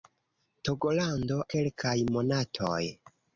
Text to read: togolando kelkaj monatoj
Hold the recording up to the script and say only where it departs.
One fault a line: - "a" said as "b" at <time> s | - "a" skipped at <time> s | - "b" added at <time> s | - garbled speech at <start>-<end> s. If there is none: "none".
none